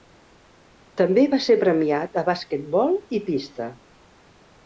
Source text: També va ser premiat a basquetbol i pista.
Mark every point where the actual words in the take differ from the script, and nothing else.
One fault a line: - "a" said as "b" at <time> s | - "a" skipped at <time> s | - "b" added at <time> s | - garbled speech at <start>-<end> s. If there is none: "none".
none